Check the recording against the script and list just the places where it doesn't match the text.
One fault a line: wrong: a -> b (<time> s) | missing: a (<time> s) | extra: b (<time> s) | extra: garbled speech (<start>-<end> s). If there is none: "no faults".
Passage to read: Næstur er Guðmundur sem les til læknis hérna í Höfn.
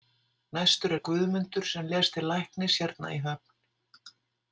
no faults